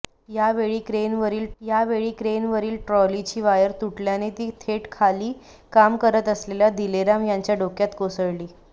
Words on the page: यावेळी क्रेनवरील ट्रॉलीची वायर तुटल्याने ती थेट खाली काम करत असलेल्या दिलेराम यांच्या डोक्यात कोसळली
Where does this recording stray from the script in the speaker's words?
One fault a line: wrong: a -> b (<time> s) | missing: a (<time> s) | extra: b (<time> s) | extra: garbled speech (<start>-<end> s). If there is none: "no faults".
extra: यावेळी क्रेनवरील (1.6 s)